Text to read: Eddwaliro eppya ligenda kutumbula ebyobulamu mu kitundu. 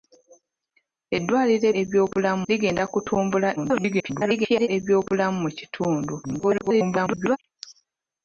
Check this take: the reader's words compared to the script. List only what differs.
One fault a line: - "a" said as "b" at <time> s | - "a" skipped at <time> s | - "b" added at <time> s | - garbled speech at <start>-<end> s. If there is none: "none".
- "eppya" said as "ebyobulamu" at 1.8 s
- garbled speech at 3.6-4.7 s
- garbled speech at 6.2-7.4 s